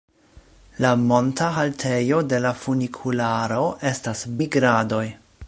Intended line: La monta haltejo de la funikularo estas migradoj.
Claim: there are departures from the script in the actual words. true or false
false